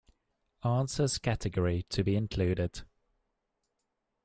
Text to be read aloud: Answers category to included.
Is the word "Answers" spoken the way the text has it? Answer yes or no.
yes